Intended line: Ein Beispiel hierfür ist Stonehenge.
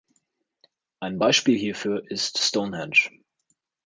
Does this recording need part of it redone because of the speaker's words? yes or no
no